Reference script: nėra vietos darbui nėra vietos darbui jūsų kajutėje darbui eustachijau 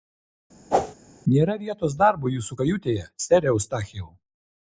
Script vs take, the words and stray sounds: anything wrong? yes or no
yes